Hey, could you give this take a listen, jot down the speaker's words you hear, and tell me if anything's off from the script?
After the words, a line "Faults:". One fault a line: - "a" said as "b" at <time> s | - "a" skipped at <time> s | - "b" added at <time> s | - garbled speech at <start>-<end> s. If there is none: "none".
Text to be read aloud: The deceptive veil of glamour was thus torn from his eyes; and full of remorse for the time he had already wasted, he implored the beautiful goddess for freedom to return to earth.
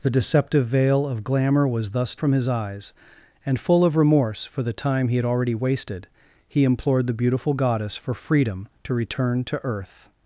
The deceptive veil of glamour was thus from his eyes; and full of remorse for the time he had already wasted, he implored the beautiful goddess for freedom to return to earth.
Faults:
- "torn" skipped at 2.1 s